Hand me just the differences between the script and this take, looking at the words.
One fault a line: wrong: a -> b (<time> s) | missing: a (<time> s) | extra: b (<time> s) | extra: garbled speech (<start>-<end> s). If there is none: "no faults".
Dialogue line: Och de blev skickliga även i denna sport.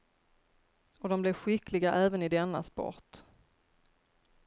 no faults